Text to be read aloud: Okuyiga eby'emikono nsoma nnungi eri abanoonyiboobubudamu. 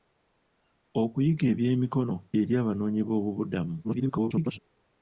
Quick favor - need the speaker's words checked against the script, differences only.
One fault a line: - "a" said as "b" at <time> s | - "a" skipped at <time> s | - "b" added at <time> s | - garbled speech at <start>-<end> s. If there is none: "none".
- "nsoma nnungi" skipped at 2.1 s
- garbled speech at 3.8-4.6 s